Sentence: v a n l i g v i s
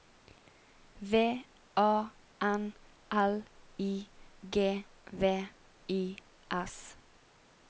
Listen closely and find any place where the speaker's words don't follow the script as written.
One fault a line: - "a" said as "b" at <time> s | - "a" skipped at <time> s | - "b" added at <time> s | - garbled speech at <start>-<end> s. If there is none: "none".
none